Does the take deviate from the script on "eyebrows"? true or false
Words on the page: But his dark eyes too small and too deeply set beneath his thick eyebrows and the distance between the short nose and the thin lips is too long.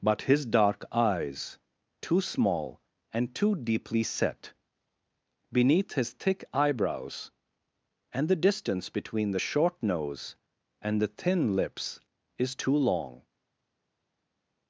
false